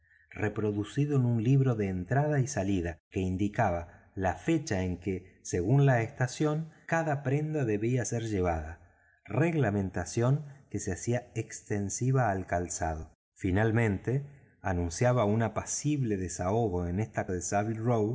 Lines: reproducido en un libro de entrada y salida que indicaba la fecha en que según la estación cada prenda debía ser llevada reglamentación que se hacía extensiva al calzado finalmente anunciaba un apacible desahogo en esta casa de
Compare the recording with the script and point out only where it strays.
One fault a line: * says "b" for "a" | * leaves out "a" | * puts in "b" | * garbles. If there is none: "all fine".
* leaves out "casa"